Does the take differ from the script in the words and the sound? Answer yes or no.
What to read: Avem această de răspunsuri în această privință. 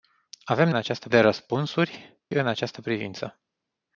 no